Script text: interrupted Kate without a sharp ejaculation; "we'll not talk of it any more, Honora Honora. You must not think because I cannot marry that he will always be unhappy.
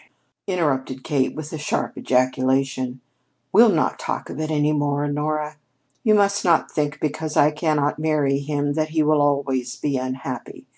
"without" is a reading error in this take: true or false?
true